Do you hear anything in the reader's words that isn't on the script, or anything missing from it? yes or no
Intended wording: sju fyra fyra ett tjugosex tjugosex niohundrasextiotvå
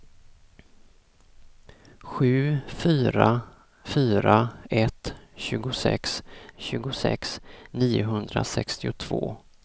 no